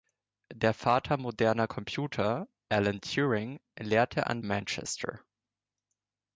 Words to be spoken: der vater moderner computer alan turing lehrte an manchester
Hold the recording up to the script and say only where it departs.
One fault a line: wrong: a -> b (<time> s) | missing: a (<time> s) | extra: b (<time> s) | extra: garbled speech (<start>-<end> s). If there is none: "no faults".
no faults